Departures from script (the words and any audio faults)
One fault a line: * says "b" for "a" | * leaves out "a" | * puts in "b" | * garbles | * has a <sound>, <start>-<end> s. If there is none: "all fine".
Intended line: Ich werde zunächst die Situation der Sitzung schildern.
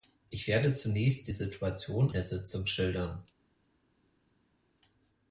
all fine